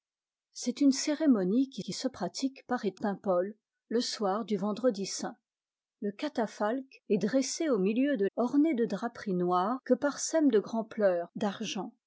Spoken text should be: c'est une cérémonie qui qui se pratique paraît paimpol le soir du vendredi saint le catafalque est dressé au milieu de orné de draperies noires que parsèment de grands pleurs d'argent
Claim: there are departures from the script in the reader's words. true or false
false